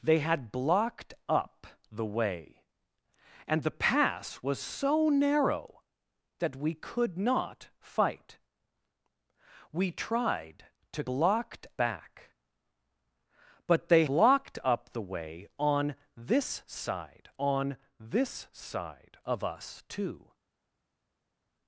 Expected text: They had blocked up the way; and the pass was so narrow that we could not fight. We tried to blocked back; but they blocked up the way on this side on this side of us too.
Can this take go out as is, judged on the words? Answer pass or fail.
pass